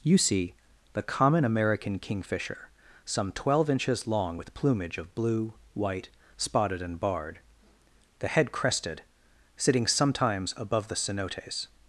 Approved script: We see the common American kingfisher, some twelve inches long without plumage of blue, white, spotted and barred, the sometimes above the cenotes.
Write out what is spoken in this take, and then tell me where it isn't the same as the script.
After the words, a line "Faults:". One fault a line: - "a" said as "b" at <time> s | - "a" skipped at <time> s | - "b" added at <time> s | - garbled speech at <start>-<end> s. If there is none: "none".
You see the common American kingfisher, some twelve inches long with plumage of blue, white, spotted and barred, the head crested, sitting sometimes above the cenotes.
Faults:
- "We" said as "You" at 0.0 s
- "without" said as "with" at 4.4 s
- "head crested sitting" added at 8.3 s